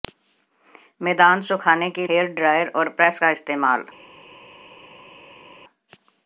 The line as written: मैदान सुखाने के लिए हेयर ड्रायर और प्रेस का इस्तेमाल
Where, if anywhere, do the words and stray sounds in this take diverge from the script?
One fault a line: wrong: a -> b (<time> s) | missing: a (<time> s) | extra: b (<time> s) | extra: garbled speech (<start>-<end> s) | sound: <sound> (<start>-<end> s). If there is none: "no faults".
missing: लिए (2.1 s)